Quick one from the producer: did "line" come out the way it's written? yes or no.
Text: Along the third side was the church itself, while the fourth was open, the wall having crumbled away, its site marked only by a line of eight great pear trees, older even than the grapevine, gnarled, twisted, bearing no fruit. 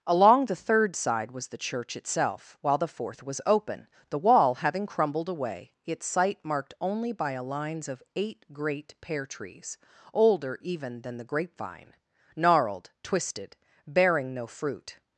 no